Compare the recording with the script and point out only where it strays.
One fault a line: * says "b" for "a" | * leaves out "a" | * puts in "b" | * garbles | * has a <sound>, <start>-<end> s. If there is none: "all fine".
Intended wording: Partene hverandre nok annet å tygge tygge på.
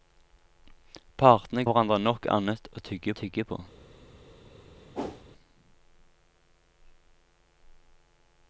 * has a whoosh, 4.9-5.2 s